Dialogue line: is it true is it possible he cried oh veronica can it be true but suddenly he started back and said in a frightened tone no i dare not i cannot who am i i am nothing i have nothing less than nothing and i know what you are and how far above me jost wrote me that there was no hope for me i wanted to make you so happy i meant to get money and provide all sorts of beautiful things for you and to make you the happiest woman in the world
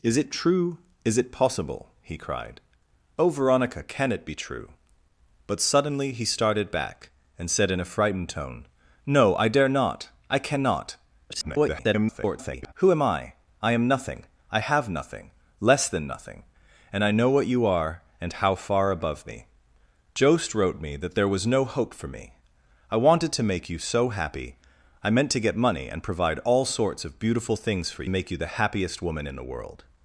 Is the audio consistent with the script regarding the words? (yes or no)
no